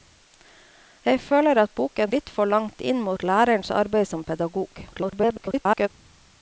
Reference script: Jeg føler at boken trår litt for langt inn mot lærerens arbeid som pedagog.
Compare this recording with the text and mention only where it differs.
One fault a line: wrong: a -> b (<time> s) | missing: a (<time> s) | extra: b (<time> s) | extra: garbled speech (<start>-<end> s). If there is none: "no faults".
missing: trår (2.1 s)
extra: garbled speech (4.9-5.9 s)